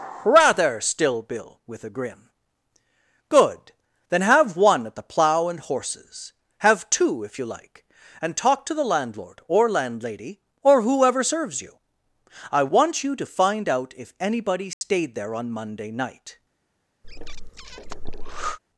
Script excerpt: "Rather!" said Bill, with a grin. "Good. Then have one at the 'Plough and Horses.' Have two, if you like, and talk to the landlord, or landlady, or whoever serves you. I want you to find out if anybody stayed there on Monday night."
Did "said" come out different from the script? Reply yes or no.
yes